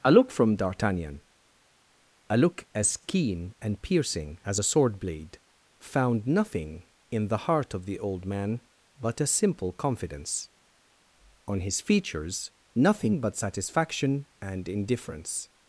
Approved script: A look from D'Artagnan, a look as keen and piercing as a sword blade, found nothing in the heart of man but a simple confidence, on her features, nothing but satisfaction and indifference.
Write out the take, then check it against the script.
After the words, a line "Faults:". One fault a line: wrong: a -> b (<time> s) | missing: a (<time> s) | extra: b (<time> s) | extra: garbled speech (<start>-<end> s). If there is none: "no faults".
A look from D'Artagnan, a look as keen and piercing as a sword blade, found nothing in the heart of the old man but a simple confidence, on his features, nothing but satisfaction and indifference.
Faults:
extra: the old (7.9 s)
wrong: her -> his (11.6 s)